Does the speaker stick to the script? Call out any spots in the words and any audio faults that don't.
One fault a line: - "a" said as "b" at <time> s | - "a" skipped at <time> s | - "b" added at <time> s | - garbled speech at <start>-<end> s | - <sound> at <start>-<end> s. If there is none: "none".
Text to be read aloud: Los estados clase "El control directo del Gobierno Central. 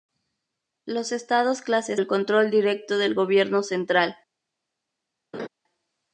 - laugh at 5.3-5.5 s